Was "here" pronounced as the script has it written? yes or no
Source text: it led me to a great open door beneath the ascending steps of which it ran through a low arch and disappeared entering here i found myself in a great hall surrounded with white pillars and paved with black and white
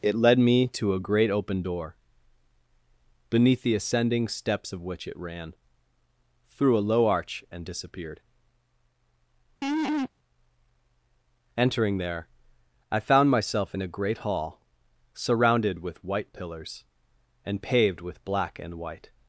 no